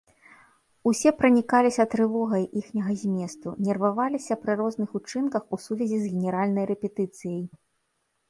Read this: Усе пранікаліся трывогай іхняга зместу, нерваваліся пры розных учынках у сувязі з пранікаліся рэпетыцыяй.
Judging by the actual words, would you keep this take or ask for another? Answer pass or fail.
fail